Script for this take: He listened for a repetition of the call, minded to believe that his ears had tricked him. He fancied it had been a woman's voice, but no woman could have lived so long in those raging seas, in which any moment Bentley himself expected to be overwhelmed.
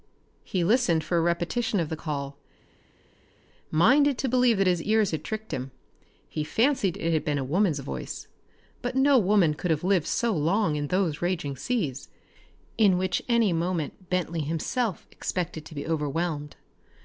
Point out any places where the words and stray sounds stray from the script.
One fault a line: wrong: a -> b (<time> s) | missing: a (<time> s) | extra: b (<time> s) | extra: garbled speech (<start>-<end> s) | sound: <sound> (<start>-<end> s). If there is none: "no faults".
no faults